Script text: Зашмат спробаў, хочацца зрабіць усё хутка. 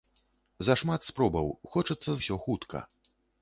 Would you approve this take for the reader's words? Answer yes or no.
no